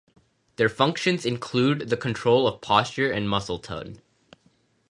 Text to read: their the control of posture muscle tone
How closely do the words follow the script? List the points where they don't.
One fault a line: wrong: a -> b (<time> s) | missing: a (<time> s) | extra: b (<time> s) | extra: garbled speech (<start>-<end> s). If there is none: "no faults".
extra: functions include (0.7 s)
extra: and (3.1 s)